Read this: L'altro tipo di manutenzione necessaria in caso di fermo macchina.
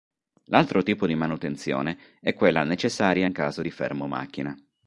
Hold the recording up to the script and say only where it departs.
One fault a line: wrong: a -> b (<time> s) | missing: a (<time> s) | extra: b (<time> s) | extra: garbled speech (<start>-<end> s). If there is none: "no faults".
extra: è quella (2.2 s)